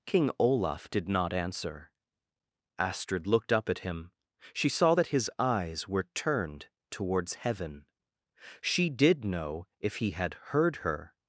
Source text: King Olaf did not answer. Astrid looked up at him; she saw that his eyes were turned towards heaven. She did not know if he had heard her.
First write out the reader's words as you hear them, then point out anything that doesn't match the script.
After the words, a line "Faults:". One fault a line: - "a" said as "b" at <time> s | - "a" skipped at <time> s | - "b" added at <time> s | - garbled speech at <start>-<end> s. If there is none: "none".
King Olaf did not answer. Astrid looked up at him; she saw that his eyes were turned towards heaven. She did know if he had heard her.
Faults:
- "not" skipped at 9.3 s